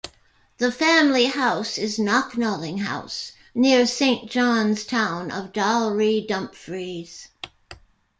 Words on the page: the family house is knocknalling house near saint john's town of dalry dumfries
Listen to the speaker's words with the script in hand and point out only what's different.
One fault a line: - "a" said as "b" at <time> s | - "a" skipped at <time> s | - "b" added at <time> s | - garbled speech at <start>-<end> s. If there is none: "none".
none